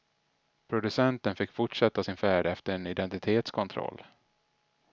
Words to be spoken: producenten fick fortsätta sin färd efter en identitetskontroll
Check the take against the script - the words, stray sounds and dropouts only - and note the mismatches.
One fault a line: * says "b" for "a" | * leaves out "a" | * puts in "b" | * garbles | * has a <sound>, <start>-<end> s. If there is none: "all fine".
all fine